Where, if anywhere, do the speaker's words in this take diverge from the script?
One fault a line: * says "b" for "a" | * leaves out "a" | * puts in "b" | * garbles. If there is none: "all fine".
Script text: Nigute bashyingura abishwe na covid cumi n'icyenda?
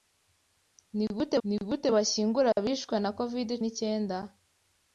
* puts in "nigute"
* leaves out "cumi"